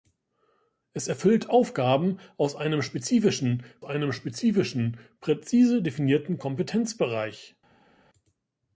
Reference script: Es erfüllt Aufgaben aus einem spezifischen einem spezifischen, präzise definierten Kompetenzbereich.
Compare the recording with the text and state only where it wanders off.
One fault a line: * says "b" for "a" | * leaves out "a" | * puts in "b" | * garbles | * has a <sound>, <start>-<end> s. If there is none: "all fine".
all fine